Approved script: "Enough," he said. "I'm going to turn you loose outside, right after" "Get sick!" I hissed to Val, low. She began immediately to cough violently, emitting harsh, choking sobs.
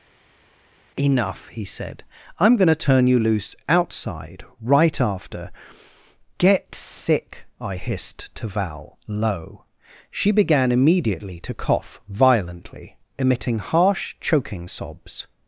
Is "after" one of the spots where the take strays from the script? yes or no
no